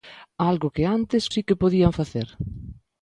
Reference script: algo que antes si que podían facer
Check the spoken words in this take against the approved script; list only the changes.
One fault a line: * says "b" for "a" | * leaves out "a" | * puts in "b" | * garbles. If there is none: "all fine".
all fine